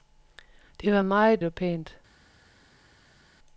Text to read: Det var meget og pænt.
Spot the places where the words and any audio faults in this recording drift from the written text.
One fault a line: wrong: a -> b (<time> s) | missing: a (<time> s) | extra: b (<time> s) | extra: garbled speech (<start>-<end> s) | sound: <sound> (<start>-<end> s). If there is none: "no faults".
no faults